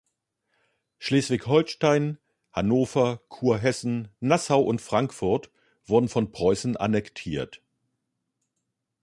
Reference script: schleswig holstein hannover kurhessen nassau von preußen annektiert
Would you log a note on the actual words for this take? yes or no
yes